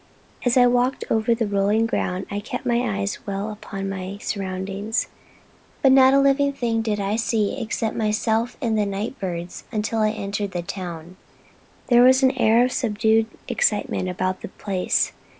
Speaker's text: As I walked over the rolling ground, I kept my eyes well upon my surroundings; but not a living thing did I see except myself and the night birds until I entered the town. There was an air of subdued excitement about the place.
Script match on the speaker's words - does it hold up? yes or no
yes